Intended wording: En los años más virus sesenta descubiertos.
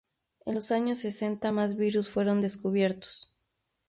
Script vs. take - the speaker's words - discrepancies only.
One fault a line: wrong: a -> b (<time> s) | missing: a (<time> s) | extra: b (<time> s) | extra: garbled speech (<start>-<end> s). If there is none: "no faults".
extra: sesenta (1.0 s)
wrong: sesenta -> fueron (2.1 s)